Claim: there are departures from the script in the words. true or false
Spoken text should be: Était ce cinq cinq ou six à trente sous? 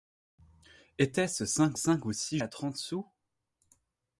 false